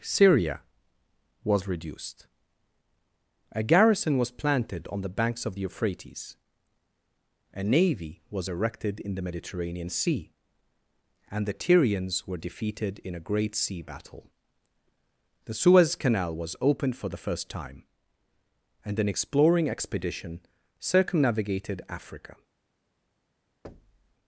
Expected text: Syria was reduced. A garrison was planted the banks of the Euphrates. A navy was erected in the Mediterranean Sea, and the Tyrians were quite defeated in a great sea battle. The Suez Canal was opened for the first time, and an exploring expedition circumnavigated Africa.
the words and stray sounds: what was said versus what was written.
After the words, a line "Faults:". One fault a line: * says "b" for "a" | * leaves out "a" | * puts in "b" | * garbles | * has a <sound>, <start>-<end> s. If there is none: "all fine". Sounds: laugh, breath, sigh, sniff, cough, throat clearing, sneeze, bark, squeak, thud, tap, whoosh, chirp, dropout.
Syria was reduced. A garrison was planted on the banks of the Euphrates. A navy was erected in the Mediterranean Sea, and the Tyrians were defeated in a great sea battle. The Suez Canal was opened for the first time, and an exploring expedition circumnavigated Africa.
Faults:
* puts in "on"
* leaves out "quite"
* has a thud, 23.6-24.1 s